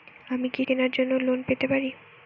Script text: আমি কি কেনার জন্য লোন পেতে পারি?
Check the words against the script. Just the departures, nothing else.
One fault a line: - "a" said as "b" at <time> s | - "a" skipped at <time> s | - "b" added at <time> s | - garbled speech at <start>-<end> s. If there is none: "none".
none